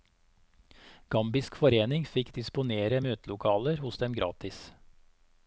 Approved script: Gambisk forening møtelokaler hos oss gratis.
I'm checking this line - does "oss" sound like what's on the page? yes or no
no